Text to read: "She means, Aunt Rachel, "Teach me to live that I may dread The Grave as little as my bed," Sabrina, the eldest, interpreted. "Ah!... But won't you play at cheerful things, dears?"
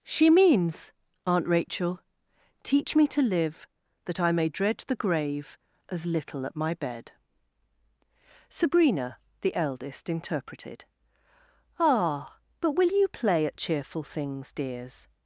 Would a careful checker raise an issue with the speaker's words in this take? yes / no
yes